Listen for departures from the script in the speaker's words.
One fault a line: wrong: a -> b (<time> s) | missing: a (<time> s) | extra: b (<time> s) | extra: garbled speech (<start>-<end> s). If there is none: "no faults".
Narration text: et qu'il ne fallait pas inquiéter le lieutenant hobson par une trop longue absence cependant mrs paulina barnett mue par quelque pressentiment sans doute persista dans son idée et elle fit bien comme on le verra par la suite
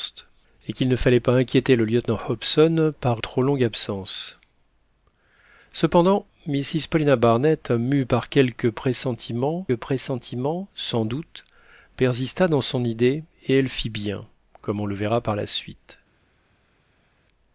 missing: une (3.2 s)
extra: pressentiment (9.7 s)